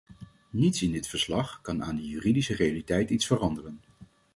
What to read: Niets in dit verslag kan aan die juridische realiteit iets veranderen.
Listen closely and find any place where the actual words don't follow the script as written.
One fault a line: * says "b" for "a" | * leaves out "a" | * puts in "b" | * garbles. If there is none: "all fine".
all fine